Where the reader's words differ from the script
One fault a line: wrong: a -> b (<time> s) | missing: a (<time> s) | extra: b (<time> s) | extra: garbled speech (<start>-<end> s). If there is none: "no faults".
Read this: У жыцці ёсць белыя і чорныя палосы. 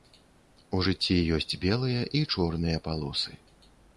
no faults